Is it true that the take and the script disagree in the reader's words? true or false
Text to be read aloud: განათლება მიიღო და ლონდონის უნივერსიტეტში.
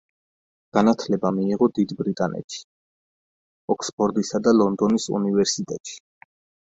true